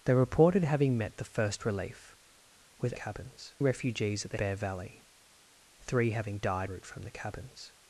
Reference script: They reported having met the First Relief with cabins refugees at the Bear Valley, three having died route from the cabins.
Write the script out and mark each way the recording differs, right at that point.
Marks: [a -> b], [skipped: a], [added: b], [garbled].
They reported having met the First Relief with cabins refugees at the Bear Valley, three having died route from the cabins.